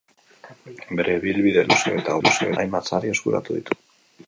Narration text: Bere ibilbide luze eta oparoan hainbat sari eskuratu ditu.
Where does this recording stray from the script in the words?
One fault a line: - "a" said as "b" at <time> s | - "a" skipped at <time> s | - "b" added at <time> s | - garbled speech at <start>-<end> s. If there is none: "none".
- "oparoan" said as "luze" at 2.2 s